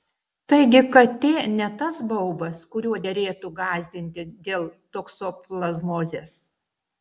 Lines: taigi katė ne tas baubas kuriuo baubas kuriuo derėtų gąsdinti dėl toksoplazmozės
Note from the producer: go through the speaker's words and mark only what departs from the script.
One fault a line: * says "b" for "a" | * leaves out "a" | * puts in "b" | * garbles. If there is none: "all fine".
* leaves out "baubas kuriuo"